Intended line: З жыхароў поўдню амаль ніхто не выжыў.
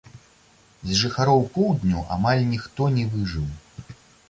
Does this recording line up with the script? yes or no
yes